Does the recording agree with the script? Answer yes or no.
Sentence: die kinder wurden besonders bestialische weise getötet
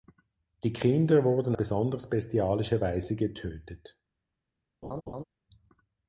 yes